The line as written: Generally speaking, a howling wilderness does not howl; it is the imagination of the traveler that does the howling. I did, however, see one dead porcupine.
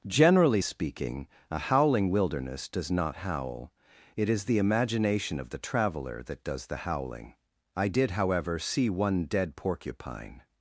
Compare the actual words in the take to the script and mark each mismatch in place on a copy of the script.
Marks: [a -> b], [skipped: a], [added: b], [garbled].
Generally speaking, a howling wilderness does not howl; it is the imagination of the traveler that does the howling. I did, however, see one dead porcupine.